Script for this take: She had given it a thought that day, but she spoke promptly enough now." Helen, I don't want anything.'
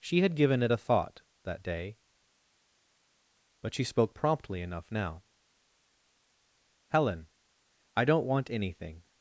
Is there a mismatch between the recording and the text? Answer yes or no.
no